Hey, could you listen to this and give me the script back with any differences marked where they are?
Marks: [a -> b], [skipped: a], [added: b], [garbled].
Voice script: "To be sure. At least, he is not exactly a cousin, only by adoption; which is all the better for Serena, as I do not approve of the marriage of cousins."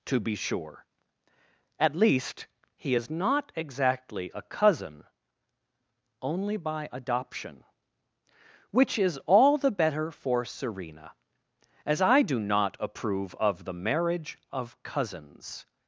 "To be sure. At least, he is not exactly a cousin, only by adoption; which is all the better for Serena, as I do not approve of the marriage of cousins."